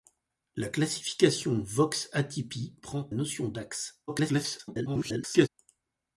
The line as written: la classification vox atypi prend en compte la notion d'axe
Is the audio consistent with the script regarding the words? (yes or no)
no